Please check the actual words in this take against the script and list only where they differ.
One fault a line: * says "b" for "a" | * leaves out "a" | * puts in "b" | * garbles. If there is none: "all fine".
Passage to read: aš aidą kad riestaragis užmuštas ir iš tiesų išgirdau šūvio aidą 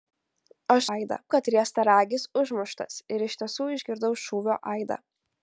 all fine